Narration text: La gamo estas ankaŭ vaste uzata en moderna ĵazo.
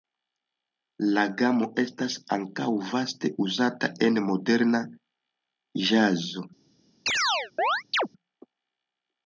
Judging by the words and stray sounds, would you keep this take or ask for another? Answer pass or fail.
fail